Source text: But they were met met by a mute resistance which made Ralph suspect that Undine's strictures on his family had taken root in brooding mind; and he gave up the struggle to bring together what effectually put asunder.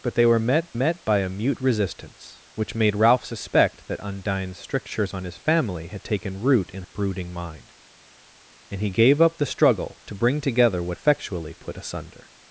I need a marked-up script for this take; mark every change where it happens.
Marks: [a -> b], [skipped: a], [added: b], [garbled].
But they were met met by a mute resistance which made Ralph suspect that Undine's strictures on his family had taken root in brooding mind; and he gave up the struggle to bring together what effectually put asunder.